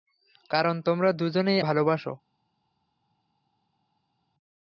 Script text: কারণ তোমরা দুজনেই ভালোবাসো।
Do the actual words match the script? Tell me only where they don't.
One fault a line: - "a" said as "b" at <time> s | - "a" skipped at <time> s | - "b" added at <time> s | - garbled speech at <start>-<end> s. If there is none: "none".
none